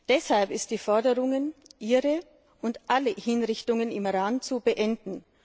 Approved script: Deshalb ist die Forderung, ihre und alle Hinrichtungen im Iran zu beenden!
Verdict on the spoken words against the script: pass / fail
pass